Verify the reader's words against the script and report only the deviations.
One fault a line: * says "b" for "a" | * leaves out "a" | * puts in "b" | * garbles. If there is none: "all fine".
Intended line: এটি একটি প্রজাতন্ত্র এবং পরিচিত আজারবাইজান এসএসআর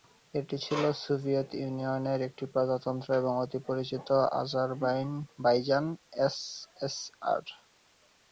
* puts in "ছিল সোভিয়েত ইউনিয়নের"
* puts in "অতি"